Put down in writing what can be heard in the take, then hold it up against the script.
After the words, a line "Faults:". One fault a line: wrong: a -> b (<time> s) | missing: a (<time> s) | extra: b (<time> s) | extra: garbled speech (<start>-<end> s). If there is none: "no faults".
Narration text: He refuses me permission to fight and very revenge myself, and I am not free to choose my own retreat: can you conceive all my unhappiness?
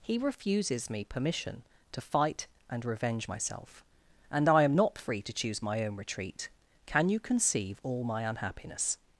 He refuses me permission to fight and revenge myself, and I am not free to choose my own retreat: can you conceive all my unhappiness?
Faults:
missing: very (2.8 s)